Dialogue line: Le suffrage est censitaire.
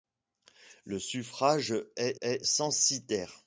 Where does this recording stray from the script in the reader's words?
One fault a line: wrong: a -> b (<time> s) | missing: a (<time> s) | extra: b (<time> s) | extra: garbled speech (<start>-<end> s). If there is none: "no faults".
extra: est (2.2 s)